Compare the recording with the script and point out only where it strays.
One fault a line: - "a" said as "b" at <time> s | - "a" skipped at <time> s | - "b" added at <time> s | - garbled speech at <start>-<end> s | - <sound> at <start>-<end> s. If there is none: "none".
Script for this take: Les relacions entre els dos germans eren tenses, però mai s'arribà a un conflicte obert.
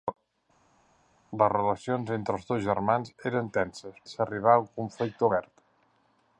- "però mai" skipped at 4.0 s